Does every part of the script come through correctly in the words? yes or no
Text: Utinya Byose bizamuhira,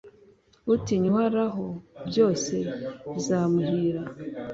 no